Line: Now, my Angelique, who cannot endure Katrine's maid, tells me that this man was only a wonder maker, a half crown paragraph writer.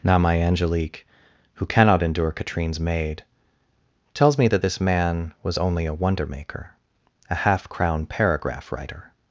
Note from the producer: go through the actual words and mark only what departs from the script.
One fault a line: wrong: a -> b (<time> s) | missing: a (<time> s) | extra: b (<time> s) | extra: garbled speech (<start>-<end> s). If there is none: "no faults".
no faults